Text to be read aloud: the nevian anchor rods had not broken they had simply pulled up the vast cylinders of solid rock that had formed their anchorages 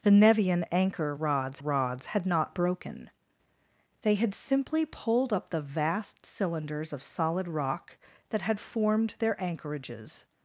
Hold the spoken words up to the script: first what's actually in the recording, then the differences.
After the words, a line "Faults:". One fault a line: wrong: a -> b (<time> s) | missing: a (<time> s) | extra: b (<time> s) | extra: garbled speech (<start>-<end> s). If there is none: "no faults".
the nevian anchor rods rods had not broken they had simply pulled up the vast cylinders of solid rock that had formed their anchorages
Faults:
extra: rods (1.6 s)